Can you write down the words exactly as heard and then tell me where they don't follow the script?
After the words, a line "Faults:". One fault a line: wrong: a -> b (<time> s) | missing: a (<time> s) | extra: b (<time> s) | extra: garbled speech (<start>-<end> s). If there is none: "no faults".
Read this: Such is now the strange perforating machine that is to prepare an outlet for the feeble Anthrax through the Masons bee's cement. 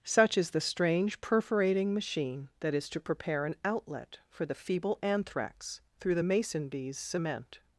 Such is the strange perforating machine that is to prepare an outlet for the feeble Anthrax through the Mason bee's cement.
Faults:
missing: now (0.5 s)
wrong: Masons -> Mason (6.2 s)